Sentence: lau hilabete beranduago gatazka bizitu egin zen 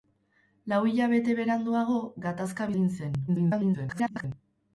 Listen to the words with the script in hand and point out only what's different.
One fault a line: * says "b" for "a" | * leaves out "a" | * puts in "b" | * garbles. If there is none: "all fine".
* leaves out "bizitu"
* garbles